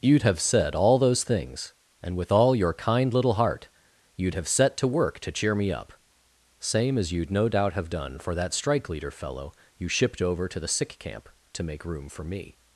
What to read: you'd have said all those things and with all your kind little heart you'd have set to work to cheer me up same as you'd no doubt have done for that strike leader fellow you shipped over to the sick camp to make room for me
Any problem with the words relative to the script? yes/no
no